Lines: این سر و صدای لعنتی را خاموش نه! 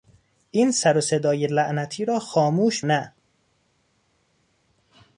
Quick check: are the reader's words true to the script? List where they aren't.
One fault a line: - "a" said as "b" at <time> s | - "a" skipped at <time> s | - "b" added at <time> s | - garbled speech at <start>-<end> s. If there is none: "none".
none